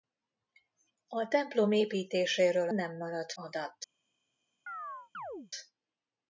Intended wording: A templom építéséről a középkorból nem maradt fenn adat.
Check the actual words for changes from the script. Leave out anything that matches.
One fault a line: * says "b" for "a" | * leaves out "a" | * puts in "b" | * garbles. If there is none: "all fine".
* leaves out "a középkorból"
* leaves out "fenn"